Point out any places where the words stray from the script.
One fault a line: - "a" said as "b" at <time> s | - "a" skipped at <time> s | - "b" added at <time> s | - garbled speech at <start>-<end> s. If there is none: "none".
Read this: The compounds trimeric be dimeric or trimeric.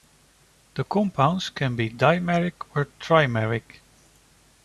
- "trimeric" said as "can" at 1.5 s